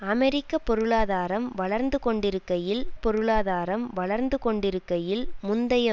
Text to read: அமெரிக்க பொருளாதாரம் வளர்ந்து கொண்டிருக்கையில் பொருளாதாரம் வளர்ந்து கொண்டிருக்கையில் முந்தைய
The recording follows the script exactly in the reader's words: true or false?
true